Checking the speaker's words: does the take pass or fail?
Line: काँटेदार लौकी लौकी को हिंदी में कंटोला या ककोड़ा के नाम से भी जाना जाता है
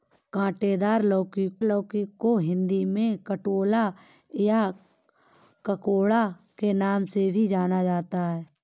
pass